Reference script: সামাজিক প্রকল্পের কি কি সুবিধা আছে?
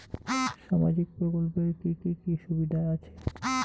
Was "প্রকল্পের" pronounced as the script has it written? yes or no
yes